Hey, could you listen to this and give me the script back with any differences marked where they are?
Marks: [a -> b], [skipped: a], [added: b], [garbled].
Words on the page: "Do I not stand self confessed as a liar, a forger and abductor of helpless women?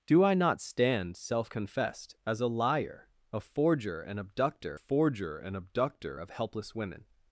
"Do I not stand self confessed as a liar, a forger and abductor [added: forger and abductor] of helpless women?